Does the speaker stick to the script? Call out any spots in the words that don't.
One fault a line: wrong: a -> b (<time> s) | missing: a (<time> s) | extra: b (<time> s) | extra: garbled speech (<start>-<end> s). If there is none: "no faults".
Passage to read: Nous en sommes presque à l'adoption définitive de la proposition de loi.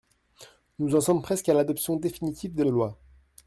missing: la proposition (2.6 s)